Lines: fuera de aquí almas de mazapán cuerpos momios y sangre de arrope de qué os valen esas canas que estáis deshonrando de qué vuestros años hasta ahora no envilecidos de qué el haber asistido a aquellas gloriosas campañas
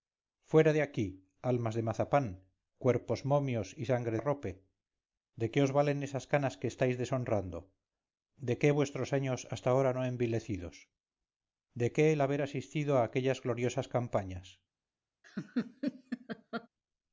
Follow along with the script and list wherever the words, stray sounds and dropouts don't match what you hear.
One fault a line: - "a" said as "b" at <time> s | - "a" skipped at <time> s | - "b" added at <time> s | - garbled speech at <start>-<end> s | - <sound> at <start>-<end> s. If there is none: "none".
- "de" skipped at 4.2 s
- laugh at 15.2-16.7 s